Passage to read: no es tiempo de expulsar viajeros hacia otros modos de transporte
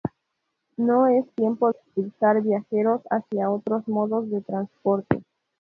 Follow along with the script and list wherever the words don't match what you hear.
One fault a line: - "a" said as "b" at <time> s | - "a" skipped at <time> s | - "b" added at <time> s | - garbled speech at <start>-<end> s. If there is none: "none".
- "de" skipped at 1.7 s